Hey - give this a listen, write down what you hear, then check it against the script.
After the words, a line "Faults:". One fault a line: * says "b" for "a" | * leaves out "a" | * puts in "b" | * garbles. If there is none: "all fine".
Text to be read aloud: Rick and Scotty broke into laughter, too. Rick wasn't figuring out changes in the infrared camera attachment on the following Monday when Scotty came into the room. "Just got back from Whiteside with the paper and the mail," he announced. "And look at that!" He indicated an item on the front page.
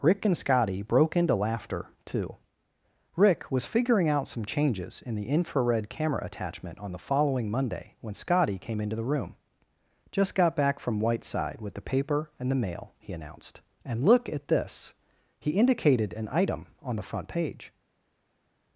Rick and Scotty broke into laughter, too. Rick was figuring out some changes in the infrared camera attachment on the following Monday when Scotty came into the room. "Just got back from Whiteside with the paper and the mail," he announced. "And look at this!" He indicated an item on the front page.
Faults:
* says "was" for "wasn't"
* puts in "some"
* says "this" for "that"